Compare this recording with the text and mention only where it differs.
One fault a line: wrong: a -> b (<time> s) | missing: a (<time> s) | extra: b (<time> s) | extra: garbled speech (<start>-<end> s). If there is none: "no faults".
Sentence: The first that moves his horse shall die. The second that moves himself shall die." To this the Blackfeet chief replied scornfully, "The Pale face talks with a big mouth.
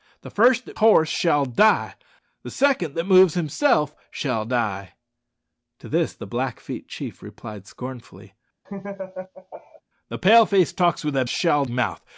missing: moves his (0.8 s)
wrong: big -> shall (11.3 s)